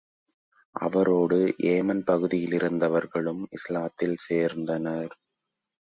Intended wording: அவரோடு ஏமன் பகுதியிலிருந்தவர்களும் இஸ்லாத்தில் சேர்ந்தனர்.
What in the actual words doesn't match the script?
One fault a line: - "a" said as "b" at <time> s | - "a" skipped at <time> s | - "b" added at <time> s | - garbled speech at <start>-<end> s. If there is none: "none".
none